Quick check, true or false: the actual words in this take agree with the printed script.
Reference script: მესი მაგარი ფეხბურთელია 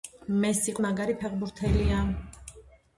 true